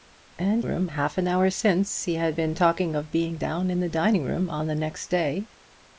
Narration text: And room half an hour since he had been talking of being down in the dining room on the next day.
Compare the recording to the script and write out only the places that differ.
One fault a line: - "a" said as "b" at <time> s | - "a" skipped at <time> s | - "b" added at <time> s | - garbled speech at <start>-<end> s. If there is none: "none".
none